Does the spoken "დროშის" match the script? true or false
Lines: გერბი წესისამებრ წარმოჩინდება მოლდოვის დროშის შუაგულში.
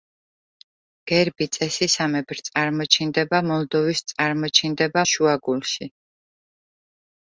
false